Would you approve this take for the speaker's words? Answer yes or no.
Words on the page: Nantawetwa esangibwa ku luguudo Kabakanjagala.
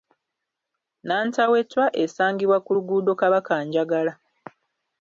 yes